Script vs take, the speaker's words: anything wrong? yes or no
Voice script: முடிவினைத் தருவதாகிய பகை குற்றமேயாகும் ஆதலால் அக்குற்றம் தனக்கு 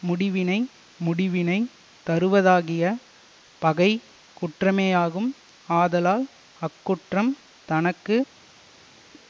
yes